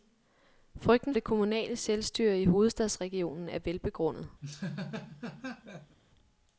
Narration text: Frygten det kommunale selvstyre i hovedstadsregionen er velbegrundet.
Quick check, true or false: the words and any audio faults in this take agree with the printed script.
false